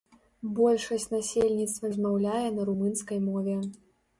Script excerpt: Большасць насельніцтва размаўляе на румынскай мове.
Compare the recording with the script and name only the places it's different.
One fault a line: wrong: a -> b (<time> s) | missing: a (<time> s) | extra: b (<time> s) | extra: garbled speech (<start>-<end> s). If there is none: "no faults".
no faults